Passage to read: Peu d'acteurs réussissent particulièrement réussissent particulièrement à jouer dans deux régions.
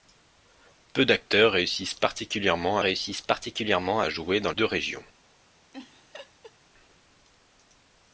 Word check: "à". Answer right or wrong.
right